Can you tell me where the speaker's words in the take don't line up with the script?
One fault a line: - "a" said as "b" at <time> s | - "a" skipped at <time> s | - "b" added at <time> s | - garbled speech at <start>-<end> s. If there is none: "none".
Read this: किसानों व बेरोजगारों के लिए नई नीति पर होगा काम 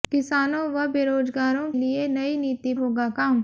- "के" skipped at 1.7 s
- "पर" skipped at 2.7 s